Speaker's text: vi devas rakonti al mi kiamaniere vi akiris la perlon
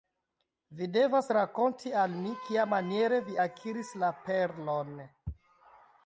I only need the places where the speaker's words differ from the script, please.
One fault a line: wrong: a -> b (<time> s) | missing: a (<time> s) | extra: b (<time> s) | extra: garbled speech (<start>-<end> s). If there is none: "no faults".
no faults